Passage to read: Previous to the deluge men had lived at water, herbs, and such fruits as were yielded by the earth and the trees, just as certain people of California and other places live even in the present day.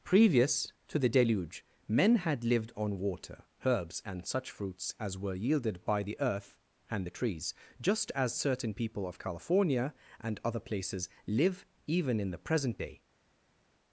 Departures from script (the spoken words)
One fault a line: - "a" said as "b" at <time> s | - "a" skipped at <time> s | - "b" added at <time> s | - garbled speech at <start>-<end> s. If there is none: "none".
- "at" said as "on" at 2.8 s